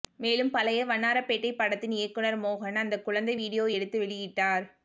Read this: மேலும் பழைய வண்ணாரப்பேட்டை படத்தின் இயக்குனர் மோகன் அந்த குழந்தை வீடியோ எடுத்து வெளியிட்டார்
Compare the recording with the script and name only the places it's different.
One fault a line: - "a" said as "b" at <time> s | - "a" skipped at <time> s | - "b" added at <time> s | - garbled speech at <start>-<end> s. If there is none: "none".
none